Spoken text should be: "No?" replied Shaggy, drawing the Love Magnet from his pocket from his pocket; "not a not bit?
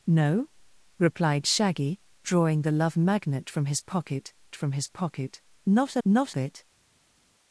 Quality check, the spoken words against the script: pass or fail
pass